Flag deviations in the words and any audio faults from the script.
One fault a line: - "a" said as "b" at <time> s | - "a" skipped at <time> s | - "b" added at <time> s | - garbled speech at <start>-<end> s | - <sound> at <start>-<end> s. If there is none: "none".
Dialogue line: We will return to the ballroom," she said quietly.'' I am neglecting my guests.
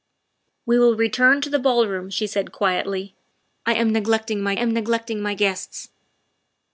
- "am neglecting my" added at 4.6 s